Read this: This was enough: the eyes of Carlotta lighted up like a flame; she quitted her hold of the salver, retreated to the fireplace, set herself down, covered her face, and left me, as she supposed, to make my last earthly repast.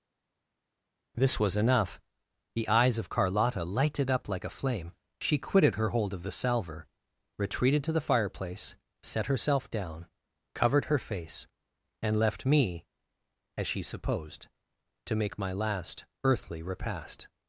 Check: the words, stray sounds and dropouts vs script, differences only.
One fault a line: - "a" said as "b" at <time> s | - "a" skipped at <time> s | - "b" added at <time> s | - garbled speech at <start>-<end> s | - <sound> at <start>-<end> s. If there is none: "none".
none